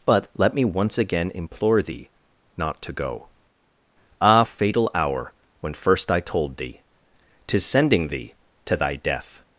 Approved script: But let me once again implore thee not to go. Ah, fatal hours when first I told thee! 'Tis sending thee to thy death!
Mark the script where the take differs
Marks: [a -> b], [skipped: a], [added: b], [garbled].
But let me once again implore thee not to go. Ah, fatal [hours -> hour] when first I told thee! 'Tis sending thee to thy death!